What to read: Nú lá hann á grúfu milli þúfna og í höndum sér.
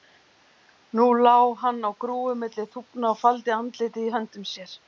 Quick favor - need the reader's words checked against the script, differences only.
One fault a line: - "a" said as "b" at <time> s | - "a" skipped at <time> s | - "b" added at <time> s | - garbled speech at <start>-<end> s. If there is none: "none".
- "faldi andlitið" added at 3.2 s